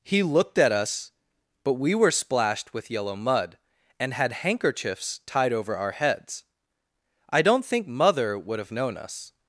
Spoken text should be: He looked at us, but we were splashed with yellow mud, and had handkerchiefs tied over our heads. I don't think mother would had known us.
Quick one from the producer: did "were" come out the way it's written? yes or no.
yes